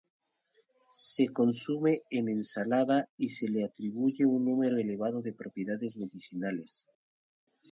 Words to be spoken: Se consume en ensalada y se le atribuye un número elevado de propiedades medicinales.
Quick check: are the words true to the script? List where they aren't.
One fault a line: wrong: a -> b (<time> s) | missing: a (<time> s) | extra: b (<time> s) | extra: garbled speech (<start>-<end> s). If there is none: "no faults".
no faults